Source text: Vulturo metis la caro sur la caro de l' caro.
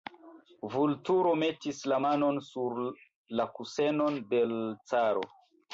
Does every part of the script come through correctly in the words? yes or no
no